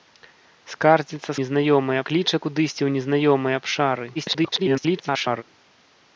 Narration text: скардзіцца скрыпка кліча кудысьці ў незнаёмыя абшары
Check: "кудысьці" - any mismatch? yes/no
no